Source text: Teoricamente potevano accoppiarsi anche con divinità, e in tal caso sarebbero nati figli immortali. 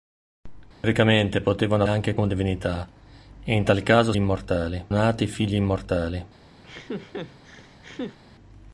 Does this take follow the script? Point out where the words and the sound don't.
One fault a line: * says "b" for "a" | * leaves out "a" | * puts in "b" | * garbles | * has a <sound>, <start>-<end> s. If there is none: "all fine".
* has a dropout, 0.7-0.8 s
* leaves out "accoppiarsi"
* says "immortali" for "sarebbero"
* has a laugh, 6.6-8.2 s